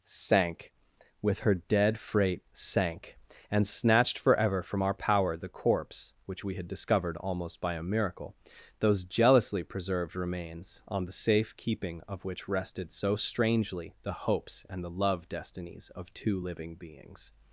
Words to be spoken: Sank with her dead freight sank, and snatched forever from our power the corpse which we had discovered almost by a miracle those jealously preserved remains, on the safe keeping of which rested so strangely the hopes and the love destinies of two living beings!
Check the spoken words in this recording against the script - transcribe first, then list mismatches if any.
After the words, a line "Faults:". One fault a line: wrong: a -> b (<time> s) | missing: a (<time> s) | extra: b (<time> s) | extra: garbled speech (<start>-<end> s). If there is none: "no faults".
Sank with her dead freight sank, and snatched forever from our power the corpse which we had discovered almost by a miracle those jealously preserved remains, on the safe keeping of which rested so strangely the hopes and the love destinies of two living beings!
Faults:
no faults